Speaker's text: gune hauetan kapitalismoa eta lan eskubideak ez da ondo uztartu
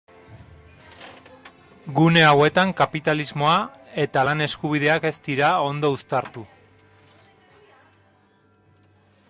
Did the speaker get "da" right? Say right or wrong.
wrong